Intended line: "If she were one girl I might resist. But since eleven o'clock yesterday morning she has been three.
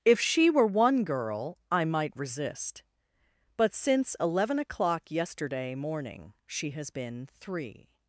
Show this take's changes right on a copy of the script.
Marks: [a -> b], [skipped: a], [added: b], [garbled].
"If she were one girl I might resist. But since eleven o'clock yesterday morning she has been three.